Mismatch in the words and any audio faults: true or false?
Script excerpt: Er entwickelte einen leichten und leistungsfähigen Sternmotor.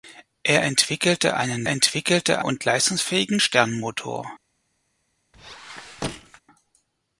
true